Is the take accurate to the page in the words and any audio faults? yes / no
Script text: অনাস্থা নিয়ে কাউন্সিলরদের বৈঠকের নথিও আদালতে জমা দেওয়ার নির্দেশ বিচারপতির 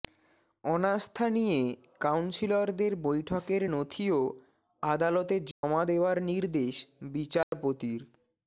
no